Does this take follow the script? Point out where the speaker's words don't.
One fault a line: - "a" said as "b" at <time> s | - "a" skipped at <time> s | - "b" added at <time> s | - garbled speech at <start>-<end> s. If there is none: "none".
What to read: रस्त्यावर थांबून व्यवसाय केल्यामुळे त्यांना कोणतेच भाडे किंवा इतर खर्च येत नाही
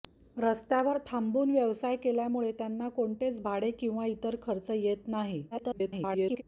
- garbled speech at 5.5-6.4 s